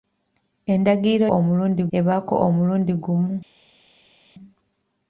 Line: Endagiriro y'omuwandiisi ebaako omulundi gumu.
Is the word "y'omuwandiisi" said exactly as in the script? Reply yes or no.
no